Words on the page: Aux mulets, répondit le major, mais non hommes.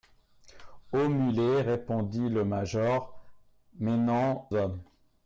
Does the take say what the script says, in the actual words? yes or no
yes